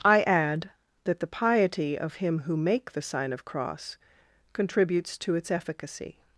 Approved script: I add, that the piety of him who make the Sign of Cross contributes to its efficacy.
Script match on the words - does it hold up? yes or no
yes